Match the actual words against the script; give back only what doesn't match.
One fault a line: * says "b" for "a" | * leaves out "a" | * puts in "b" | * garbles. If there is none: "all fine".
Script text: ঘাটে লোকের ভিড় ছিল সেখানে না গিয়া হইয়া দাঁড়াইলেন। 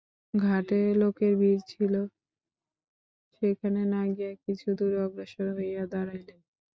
* puts in "কিছু দূরে অগ্রসর"